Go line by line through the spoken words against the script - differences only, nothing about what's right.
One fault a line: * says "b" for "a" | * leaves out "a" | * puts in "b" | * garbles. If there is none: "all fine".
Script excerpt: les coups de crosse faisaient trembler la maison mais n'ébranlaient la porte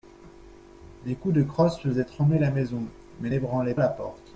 all fine